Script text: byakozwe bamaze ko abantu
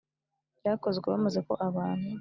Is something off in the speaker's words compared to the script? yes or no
no